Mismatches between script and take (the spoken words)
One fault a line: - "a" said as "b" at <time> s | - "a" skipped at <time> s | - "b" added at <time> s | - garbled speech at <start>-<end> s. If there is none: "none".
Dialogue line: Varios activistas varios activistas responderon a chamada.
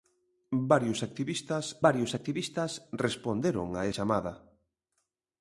none